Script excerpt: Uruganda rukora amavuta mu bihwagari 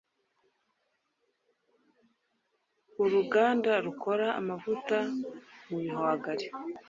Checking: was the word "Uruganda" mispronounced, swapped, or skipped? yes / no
no